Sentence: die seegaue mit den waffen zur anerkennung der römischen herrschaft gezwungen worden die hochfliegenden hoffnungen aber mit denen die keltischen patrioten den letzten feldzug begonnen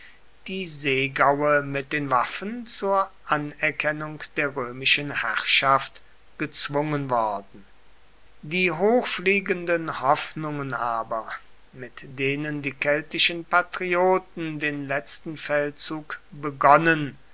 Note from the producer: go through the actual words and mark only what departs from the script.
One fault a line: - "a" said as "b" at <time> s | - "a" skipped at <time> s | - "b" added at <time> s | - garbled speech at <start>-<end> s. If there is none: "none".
none